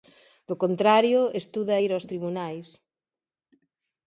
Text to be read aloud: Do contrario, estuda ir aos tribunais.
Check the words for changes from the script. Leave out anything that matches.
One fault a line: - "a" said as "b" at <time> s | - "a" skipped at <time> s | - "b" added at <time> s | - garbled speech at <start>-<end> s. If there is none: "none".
none